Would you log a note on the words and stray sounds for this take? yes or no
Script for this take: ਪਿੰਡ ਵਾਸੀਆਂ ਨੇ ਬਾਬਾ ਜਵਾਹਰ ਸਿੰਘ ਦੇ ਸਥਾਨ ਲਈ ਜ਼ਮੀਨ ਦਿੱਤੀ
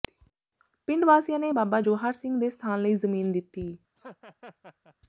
yes